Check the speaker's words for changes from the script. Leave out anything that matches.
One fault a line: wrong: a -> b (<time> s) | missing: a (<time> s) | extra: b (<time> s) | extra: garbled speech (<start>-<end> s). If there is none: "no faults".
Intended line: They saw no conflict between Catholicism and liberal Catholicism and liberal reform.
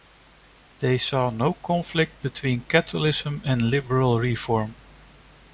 missing: Catholicism and liberal (4.2 s)